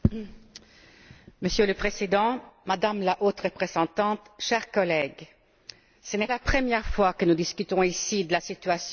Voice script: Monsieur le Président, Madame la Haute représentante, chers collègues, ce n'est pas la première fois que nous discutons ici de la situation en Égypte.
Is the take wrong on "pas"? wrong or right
wrong